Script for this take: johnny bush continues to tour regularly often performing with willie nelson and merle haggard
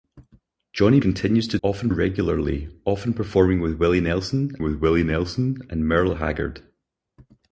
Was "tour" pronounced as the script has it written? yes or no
no